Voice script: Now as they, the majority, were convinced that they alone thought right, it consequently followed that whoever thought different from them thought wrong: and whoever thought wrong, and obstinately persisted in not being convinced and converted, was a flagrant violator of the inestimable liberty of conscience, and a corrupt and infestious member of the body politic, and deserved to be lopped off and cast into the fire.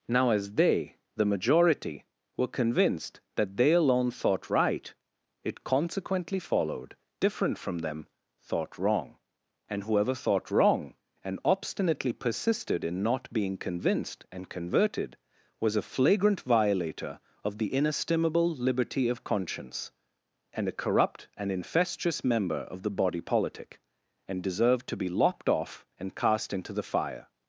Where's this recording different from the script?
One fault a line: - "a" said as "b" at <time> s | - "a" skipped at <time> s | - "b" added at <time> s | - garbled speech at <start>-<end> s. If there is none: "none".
- "that whoever thought" skipped at 7.0 s